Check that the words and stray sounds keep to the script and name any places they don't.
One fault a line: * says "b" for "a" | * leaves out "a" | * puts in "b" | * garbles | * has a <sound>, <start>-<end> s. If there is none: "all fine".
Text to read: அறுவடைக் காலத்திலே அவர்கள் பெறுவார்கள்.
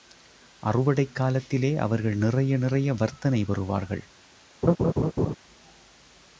* puts in "நிறைய நிறைய வர்த்தனை"
* has a laugh, 4.6-5.3 s